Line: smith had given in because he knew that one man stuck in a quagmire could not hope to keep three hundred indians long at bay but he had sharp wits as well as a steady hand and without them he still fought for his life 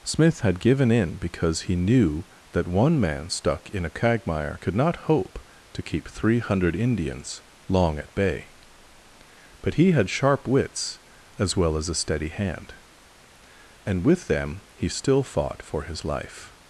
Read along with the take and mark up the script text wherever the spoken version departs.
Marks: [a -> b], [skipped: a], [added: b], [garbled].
smith had given in because he knew that one man stuck in a quagmire could not hope to keep three hundred indians long at bay but he had sharp wits as well as a steady hand and [without -> with] them he still fought for his life